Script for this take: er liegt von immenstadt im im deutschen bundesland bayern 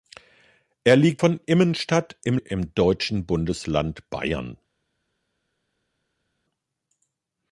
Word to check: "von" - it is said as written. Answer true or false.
true